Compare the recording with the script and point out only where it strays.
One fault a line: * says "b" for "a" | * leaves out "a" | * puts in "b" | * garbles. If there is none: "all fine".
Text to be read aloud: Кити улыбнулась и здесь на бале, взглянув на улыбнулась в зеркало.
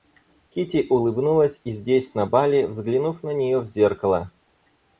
* says "нее" for "улыбнулась"